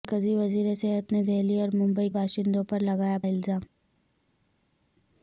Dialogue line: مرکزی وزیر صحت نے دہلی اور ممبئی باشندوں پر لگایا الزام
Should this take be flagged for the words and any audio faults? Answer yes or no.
no